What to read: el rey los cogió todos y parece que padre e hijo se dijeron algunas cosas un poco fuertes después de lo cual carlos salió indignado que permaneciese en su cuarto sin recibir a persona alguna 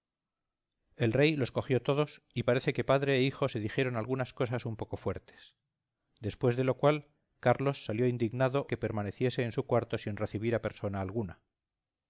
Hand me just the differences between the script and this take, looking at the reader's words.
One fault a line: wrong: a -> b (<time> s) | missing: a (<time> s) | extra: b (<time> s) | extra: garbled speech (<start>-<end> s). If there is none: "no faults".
no faults